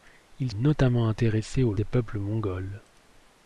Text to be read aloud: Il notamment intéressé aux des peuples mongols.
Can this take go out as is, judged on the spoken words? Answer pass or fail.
pass